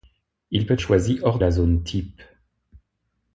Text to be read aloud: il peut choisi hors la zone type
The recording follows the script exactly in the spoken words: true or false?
true